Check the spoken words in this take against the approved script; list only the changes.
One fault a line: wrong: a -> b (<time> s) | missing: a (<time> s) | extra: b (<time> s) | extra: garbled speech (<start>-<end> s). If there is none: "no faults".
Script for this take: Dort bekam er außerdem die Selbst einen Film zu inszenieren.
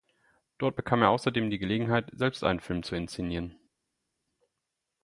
extra: Gelegenheit (1.6 s)